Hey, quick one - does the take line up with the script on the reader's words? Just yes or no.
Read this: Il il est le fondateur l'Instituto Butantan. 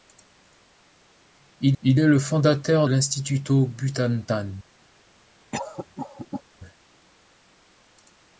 yes